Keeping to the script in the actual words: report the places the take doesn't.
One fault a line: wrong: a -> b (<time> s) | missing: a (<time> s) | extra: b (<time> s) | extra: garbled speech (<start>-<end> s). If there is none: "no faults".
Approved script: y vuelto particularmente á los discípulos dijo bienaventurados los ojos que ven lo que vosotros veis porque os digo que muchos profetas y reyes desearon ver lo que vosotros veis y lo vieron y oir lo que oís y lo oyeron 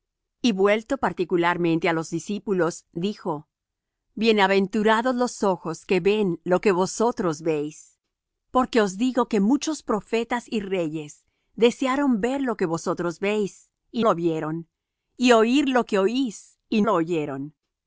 no faults